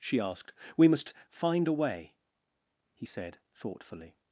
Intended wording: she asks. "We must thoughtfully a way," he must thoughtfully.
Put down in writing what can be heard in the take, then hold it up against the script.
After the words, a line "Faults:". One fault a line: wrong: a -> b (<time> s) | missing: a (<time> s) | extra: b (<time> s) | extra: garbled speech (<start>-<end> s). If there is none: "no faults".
she asked. "We must find a way," he said thoughtfully.
Faults:
wrong: asks -> asked (0.2 s)
wrong: thoughtfully -> find (1.3 s)
wrong: must -> said (3.0 s)